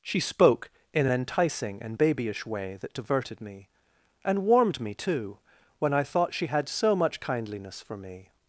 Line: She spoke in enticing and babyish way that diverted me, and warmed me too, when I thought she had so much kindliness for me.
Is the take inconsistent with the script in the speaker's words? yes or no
no